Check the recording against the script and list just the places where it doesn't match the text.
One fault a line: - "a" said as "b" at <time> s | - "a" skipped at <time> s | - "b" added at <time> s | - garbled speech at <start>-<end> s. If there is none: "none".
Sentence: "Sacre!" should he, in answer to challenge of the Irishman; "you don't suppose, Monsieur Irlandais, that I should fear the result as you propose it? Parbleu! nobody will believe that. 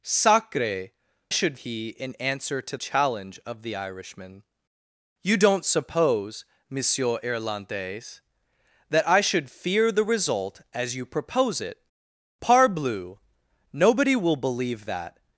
none